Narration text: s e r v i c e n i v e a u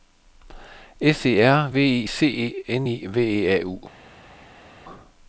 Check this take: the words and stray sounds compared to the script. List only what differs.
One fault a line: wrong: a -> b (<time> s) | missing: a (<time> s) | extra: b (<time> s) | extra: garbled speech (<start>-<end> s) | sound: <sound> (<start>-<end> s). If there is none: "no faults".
no faults